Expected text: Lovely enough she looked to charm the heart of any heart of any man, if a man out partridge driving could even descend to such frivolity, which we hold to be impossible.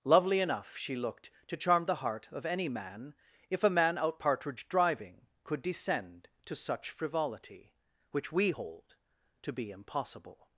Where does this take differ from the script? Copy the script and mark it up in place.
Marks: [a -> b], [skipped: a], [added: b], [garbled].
Lovely enough she looked to charm the heart of any [skipped: heart of any] man, if a man out partridge driving could [skipped: even] descend to such frivolity, which we hold to be impossible.